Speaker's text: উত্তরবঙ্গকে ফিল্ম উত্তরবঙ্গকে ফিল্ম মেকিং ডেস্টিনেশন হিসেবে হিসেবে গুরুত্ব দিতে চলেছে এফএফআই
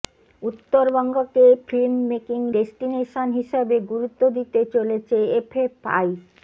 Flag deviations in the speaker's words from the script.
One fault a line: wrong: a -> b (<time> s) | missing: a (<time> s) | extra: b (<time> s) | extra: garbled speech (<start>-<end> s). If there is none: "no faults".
missing: উত্তরবঙ্গকে ফিল্ম (1.9 s)
missing: হিসেবে (3.8 s)